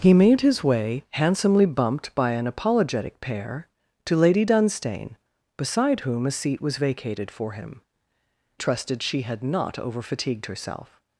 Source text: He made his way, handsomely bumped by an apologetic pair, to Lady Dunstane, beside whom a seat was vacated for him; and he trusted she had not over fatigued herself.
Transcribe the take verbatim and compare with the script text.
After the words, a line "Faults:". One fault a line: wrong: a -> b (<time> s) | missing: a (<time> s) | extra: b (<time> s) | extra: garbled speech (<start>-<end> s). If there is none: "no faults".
He made his way, handsomely bumped by an apologetic pair, to Lady Dunstane, beside whom a seat was vacated for him; trusted she had not over fatigued herself.
Faults:
missing: and he (7.8 s)